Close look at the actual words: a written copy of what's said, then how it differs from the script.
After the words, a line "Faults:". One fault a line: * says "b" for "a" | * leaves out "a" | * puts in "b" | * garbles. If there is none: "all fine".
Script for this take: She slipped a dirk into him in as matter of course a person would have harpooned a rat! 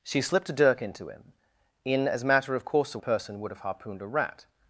She slipped a dirk into him in as matter of course a person would have harpooned a rat!
Faults:
all fine